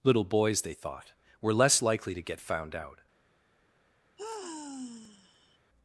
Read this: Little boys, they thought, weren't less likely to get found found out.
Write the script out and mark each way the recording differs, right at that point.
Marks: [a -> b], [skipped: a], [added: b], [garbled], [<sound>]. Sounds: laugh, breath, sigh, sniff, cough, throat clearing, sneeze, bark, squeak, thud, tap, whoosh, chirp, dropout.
Little boys, they thought, [weren't -> were] less likely to get found [skipped: found] out. [sigh]